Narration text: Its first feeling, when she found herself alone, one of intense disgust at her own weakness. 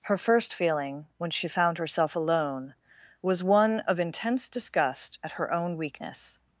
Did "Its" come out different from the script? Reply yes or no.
yes